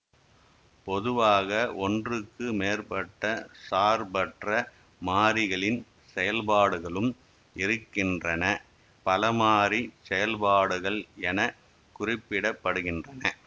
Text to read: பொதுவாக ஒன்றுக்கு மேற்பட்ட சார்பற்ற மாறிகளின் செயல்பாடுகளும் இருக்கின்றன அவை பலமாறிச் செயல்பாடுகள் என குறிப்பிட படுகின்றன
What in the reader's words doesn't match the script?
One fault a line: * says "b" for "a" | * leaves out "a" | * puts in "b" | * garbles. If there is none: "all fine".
* leaves out "அவை"